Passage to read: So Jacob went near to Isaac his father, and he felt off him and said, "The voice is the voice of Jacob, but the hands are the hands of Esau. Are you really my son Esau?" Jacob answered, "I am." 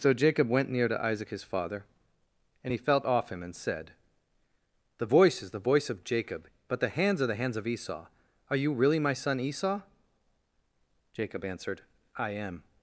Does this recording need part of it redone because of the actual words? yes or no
no